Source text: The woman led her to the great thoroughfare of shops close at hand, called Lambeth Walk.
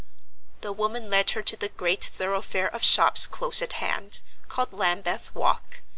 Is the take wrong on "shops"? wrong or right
right